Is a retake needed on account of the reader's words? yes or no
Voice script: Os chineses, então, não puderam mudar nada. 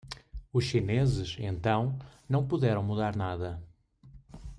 no